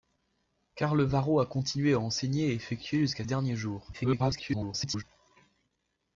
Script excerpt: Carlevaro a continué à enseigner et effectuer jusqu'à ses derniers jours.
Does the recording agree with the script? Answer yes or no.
no